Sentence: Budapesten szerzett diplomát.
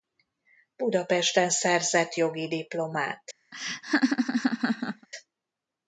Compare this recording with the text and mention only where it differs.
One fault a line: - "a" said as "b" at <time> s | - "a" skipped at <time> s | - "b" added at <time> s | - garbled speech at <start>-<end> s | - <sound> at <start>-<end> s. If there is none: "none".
- "jogi" added at 2.1 s
- laugh at 3.5-5.1 s